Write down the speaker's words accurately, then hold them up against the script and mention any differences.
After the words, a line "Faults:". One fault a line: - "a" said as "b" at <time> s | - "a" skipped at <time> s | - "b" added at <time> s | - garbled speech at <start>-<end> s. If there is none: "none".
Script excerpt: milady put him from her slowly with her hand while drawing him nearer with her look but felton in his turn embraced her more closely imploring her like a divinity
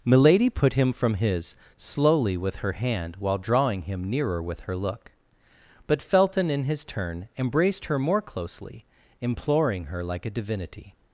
milady put him from his slowly with her hand while drawing him nearer with her look but felton in his turn embraced her more closely imploring her like a divinity
Faults:
- "her" said as "his" at 1.1 s